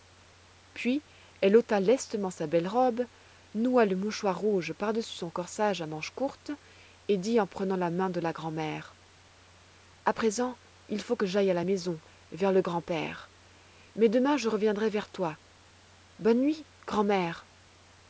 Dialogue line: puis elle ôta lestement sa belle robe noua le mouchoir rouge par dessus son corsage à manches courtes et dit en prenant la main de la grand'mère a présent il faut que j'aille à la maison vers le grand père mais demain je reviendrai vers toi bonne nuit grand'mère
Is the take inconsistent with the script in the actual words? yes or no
no